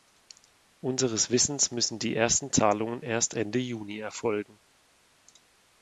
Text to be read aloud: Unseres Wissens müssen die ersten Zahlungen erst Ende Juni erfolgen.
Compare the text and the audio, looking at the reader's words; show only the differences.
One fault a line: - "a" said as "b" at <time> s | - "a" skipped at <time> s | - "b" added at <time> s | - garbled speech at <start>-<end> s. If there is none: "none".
none